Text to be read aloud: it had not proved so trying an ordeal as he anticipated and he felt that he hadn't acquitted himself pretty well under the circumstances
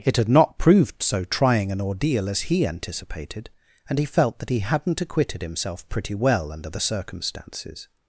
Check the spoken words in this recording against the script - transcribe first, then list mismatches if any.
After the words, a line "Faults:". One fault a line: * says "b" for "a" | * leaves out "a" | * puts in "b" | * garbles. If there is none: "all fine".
it had not proved so trying an ordeal as he anticipated and he felt that he hadn't acquitted himself pretty well under the circumstances
Faults:
all fine